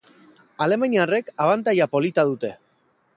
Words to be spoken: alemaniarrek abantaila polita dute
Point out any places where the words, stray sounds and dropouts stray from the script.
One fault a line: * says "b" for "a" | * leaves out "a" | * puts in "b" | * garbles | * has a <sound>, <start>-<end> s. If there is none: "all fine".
all fine